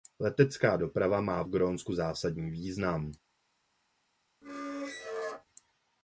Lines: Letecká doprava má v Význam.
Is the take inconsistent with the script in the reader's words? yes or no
yes